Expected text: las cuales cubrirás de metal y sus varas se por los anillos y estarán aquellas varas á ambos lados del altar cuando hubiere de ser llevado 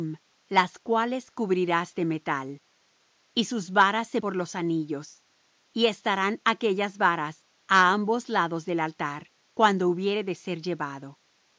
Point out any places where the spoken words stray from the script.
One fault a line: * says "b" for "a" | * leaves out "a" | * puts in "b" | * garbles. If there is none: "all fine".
all fine